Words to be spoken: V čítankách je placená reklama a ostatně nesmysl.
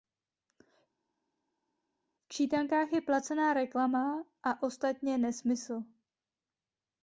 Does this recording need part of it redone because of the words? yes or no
no